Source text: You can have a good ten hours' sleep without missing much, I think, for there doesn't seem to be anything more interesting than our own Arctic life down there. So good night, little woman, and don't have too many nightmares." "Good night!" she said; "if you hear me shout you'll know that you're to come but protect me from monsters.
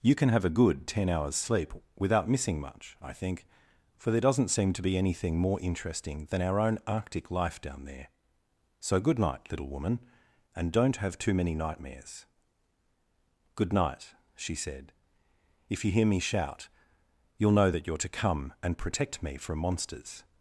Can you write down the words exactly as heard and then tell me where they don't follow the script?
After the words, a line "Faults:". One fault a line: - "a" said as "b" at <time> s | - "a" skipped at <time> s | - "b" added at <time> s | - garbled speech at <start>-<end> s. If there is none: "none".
You can have a good ten hours' sleep without missing much, I think, for there doesn't seem to be anything more interesting than our own Arctic life down there. So good night, little woman, and don't have too many nightmares." "Good night!" she said; "if you hear me shout you'll know that you're to come and protect me from monsters.
Faults:
- "but" said as "and" at 18.6 s